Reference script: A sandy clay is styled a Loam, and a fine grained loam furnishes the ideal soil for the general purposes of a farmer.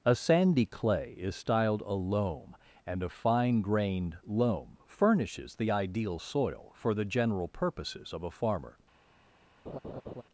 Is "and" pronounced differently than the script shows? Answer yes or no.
no